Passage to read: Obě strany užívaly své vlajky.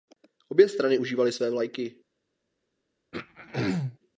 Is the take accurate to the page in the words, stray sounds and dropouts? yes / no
no